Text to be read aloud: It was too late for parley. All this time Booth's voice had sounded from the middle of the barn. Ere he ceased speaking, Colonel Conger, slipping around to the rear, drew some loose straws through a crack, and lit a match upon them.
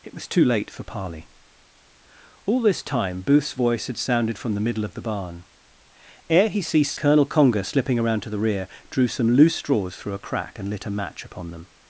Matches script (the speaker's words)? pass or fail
fail